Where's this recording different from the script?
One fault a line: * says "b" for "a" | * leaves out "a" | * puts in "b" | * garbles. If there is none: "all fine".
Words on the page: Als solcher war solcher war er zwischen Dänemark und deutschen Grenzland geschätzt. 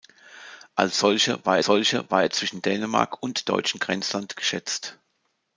all fine